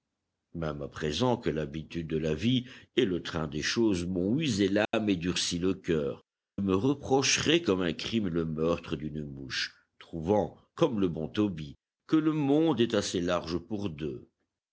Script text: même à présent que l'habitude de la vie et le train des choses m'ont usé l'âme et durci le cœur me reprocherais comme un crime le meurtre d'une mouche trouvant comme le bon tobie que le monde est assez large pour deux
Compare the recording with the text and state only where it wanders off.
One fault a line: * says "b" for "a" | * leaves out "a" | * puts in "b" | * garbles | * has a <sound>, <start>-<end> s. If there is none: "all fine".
* has a dropout, 4.8-4.9 s